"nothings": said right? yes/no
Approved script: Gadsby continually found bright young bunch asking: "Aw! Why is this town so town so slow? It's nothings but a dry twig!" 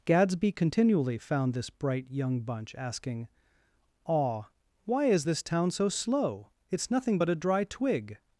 no